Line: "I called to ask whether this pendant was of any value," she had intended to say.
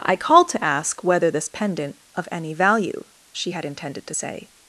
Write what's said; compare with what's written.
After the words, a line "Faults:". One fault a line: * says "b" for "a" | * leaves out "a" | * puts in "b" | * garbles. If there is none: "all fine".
"I called to ask whether this pendant of any value," she had intended to say.
Faults:
* leaves out "was"